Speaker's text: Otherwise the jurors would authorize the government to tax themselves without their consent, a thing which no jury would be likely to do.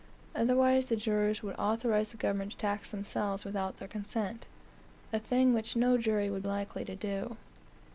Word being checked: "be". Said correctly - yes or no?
no